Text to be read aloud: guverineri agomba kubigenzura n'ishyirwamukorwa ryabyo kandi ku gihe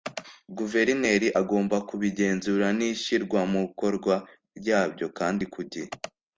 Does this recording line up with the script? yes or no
yes